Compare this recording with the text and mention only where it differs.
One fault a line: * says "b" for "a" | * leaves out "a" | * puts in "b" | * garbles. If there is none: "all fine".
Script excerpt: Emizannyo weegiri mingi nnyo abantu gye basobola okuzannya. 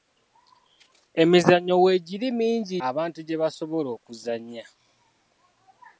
* leaves out "nnyo"